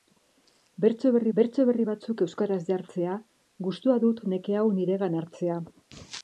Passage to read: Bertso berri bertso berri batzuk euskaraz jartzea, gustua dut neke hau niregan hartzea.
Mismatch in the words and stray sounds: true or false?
false